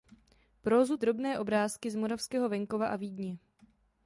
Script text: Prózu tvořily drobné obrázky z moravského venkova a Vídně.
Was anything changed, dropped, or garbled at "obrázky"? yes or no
no